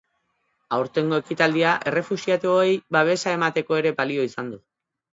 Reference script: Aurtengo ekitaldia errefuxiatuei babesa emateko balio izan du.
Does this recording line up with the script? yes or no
no